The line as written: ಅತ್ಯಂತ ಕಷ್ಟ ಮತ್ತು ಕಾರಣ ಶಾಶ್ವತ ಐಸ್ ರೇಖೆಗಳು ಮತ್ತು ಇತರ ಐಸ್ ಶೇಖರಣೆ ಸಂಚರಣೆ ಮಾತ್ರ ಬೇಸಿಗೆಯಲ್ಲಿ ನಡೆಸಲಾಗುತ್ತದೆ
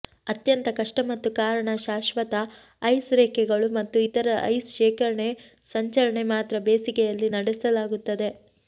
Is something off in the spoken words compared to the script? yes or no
no